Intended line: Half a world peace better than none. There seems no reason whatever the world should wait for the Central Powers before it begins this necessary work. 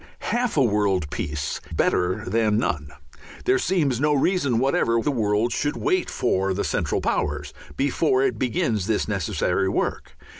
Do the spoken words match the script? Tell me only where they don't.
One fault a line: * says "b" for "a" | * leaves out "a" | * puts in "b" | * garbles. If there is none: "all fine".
all fine